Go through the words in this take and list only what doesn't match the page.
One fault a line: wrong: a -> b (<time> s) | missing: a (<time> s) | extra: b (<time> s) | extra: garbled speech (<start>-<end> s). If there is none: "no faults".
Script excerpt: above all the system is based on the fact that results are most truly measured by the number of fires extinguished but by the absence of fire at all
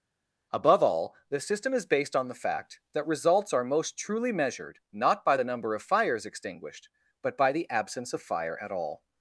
extra: not (4.9 s)